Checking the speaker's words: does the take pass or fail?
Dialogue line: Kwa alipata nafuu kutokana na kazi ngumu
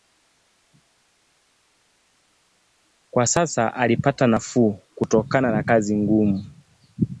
fail